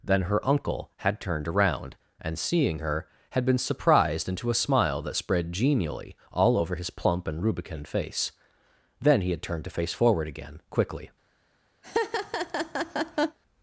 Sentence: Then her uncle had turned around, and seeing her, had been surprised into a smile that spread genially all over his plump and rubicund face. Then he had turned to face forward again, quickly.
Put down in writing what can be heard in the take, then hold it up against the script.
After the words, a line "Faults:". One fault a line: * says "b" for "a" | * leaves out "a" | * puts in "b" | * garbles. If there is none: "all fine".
Then her uncle had turned around, and seeing her, had been surprised into a smile that spread genially all over his plump and rubicund face. Then he had turned to face forward again, quickly.
Faults:
all fine